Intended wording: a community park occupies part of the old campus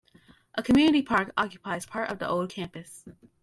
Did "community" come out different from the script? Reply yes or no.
no